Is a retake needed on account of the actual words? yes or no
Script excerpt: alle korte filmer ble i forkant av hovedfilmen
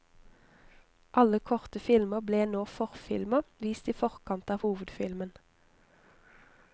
yes